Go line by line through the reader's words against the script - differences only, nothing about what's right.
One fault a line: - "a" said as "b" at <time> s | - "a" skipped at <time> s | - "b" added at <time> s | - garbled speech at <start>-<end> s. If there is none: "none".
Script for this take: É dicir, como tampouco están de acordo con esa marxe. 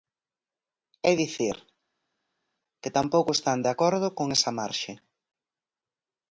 - "como" said as "que" at 2.8 s